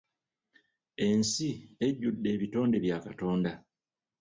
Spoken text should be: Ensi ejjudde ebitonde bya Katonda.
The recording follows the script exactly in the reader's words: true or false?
true